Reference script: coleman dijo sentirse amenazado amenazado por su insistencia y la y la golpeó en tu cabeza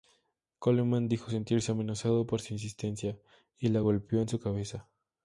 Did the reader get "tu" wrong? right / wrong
wrong